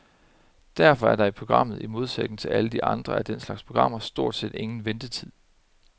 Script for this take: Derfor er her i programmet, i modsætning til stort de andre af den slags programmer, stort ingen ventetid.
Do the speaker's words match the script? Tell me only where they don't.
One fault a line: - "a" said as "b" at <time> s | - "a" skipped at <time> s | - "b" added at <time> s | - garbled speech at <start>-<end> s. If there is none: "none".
- "her" said as "der" at 1.1 s
- "stort" said as "alle" at 2.5 s
- "set" added at 4.3 s